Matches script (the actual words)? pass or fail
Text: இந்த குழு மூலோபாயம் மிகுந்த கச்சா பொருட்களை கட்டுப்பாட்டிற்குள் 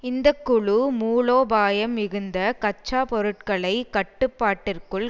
pass